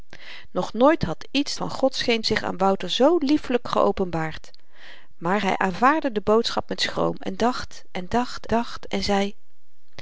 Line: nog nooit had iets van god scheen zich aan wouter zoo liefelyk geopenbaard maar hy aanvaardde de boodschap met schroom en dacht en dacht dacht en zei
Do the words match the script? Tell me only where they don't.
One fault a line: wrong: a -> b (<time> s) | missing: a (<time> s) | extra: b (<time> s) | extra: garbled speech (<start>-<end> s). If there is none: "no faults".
no faults